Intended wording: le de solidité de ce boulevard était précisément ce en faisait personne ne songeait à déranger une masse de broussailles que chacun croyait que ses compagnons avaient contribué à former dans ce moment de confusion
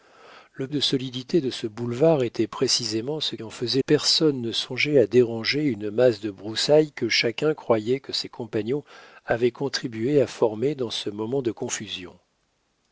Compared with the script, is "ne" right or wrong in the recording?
right